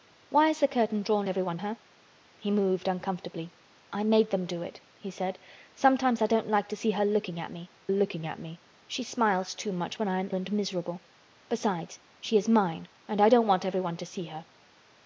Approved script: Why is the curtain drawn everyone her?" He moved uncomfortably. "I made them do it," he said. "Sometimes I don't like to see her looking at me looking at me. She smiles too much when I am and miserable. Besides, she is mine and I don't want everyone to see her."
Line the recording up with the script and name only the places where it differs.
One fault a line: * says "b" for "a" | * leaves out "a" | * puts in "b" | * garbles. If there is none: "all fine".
all fine